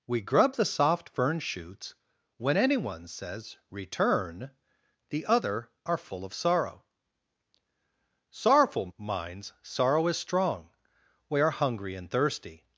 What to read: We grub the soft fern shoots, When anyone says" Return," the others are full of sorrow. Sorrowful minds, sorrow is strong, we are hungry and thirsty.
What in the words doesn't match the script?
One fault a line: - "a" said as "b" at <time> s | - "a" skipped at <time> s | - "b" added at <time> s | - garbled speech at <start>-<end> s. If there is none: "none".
- "others" said as "other" at 5.2 s